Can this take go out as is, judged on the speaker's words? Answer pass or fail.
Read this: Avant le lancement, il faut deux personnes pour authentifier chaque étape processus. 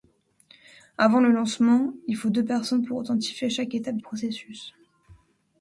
pass